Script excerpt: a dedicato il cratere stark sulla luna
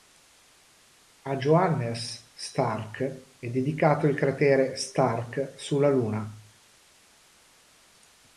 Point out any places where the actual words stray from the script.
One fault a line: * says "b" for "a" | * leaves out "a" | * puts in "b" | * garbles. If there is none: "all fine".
* puts in "johannes stark è"